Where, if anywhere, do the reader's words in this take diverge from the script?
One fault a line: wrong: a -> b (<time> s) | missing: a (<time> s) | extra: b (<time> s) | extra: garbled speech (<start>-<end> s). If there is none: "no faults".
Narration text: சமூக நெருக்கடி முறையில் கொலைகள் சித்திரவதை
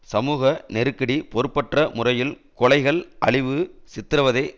extra: பொறுப்பற்ற (1.3 s)
extra: அழிவு (3.2 s)